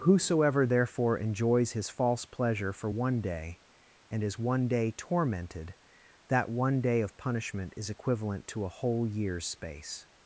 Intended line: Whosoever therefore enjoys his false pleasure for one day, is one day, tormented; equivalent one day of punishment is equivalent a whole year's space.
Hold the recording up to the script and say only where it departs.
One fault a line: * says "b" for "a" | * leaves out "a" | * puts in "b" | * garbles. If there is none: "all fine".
* puts in "and"
* says "that" for "equivalent"
* puts in "to"